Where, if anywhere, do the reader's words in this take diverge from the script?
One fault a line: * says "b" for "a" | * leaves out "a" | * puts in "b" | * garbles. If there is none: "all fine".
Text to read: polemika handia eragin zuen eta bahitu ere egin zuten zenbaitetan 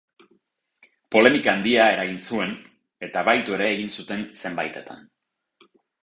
all fine